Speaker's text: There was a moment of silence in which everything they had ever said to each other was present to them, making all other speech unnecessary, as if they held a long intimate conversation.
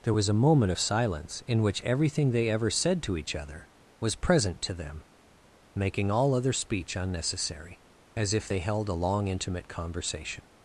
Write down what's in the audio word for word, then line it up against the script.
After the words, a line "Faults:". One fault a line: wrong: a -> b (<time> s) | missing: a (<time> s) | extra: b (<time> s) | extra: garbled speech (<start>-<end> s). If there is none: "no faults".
There was a moment of silence in which everything they ever said to each other was present to them, making all other speech unnecessary, as if they held a long intimate conversation.
Faults:
missing: had (2.5 s)